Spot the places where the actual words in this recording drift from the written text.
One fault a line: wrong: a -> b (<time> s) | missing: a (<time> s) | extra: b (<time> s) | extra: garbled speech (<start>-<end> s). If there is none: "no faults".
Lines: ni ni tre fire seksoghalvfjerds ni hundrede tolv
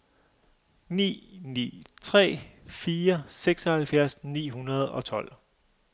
extra: og (4.9 s)